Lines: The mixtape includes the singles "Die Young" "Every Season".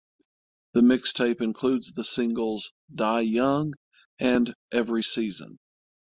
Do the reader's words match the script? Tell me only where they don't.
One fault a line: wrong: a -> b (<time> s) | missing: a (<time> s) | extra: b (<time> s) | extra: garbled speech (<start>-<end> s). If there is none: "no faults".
extra: and (4.2 s)